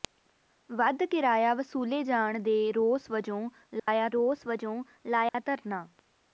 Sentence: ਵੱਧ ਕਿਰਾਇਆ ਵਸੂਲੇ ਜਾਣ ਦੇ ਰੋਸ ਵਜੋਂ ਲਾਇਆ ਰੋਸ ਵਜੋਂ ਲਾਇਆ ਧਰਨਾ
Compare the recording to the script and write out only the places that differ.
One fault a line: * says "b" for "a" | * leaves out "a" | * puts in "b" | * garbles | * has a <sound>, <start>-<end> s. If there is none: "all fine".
* has a dropout, 3.8-3.9 s
* has a dropout, 5.3-5.3 s